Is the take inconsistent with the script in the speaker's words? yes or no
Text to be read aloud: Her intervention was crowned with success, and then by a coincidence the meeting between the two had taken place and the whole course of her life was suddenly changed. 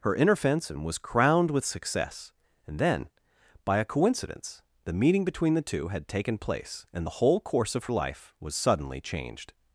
yes